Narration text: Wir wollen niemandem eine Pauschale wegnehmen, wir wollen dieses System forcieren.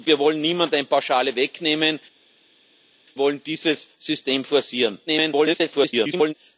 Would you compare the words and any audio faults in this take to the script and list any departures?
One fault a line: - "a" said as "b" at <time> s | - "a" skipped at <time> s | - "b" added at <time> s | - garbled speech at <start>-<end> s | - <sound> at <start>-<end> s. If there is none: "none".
- "wir" skipped at 2.0 s
- garbled speech at 5.1-6.3 s